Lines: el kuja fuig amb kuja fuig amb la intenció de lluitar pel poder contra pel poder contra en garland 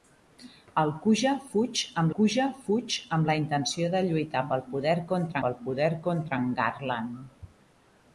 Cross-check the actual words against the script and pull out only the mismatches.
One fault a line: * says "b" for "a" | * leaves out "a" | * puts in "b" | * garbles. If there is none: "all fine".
all fine